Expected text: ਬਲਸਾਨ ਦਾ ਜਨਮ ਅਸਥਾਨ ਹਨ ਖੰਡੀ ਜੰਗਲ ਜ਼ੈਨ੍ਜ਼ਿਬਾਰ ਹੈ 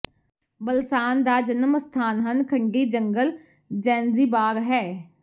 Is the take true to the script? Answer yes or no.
yes